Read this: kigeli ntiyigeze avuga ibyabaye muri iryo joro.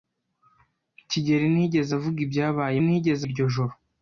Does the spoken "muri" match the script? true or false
false